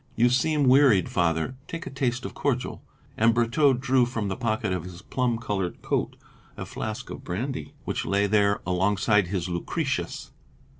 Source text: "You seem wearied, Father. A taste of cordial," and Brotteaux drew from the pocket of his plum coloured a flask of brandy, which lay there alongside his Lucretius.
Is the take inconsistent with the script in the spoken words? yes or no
yes